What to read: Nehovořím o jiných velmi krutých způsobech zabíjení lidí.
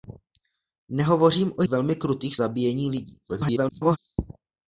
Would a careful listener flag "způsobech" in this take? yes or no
yes